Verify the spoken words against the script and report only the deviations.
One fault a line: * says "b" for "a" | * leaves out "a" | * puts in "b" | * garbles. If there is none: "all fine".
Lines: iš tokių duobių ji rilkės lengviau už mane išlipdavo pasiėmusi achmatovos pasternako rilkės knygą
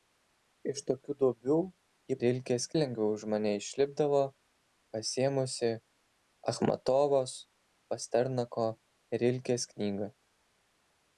all fine